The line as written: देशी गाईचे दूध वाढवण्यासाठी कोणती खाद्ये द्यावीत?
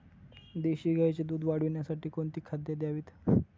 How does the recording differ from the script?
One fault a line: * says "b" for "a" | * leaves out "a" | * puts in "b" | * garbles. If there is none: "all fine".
all fine